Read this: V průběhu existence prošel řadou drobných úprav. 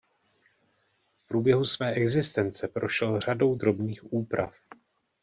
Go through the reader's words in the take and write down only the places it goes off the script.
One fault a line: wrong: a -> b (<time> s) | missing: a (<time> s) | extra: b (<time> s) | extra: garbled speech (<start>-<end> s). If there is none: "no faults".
extra: své (1.6 s)